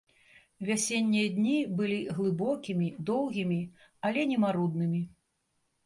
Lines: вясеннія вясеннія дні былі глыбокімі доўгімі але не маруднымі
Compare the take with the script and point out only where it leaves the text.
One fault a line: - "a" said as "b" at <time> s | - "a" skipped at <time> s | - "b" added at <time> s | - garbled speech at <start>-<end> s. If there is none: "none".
- "вясеннія" skipped at 1.3 s